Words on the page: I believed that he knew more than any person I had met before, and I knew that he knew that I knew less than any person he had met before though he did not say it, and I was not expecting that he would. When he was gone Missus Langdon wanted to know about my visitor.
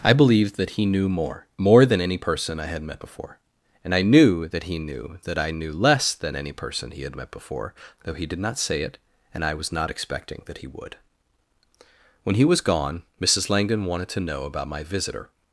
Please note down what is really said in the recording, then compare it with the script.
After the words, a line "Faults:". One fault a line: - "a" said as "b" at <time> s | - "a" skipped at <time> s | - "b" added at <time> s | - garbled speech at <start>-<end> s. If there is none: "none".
I believed that he knew more more than any person I had met before, and I knew that he knew that I knew less than any person he had met before though he did not say it, and I was not expecting that he would. When he was gone Missus Langdon wanted to know about my visitor.
Faults:
- "more" added at 1.6 s